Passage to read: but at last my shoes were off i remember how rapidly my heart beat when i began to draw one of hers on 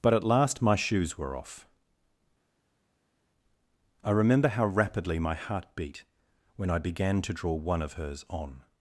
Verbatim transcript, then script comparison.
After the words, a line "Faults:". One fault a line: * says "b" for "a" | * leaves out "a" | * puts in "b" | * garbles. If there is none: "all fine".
but at last my shoes were off i remember how rapidly my heart beat when i began to draw one of hers on
Faults:
all fine